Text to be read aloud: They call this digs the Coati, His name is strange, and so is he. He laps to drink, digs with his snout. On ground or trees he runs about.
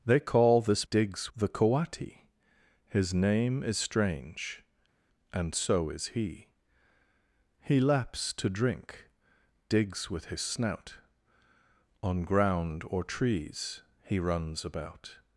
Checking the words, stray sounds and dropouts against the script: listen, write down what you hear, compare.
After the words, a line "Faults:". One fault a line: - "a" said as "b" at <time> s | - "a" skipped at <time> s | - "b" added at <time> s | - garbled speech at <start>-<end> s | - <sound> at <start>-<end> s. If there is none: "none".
They call this digs the Coati, His name is strange, and so is he. He laps to drink, digs with his snout. On ground or trees he runs about.
Faults:
none